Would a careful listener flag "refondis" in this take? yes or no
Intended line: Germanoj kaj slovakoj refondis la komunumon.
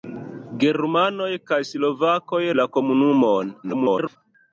yes